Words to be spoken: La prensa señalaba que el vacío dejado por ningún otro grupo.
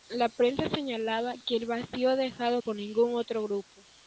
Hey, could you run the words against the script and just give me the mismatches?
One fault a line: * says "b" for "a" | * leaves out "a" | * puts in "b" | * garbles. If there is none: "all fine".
all fine